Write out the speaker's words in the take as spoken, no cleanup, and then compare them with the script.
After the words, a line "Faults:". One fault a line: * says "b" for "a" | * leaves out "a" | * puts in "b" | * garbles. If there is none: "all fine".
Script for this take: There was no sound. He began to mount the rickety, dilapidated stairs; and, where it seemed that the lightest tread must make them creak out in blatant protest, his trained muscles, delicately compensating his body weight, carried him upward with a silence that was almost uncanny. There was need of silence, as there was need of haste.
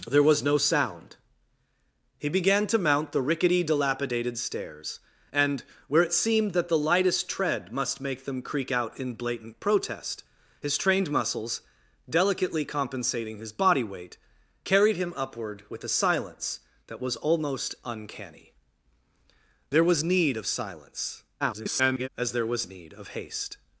There was no sound. He began to mount the rickety, dilapidated stairs; and, where it seemed that the lightest tread must make them creak out in blatant protest, his trained muscles, delicately compensating his body weight, carried him upward with a silence that was almost uncanny. There was need of silence, [garbled] as there was need of haste.
Faults:
* garbles